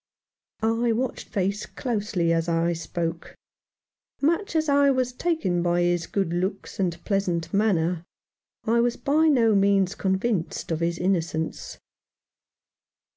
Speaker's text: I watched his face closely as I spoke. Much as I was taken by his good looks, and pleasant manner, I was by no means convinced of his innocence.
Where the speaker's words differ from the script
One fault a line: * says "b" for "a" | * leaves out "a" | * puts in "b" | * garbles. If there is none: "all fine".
* leaves out "his"